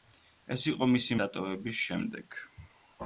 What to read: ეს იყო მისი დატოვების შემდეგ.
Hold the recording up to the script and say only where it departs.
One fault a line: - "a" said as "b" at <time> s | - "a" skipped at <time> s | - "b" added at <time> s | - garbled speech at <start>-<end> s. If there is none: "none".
none